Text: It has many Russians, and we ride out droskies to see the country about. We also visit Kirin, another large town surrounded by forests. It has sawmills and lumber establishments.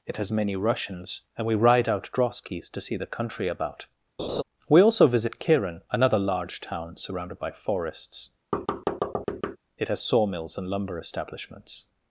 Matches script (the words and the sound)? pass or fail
fail